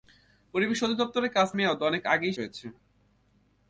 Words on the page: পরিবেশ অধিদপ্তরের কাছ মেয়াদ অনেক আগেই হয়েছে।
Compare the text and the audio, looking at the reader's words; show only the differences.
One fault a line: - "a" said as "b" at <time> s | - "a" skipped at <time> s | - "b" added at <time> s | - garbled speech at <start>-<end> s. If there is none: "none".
none